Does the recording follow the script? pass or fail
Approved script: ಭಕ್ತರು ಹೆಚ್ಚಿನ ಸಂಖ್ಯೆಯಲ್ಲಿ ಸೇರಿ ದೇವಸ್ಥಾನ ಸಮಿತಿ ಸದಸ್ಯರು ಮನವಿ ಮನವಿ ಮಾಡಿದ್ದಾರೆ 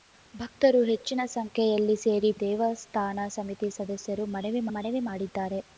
pass